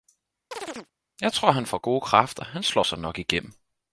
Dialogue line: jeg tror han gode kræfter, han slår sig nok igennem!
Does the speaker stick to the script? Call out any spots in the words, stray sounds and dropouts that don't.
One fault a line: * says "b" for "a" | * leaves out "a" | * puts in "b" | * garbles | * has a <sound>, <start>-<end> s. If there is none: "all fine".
* has a chirp, 0.5-0.9 s
* puts in "får"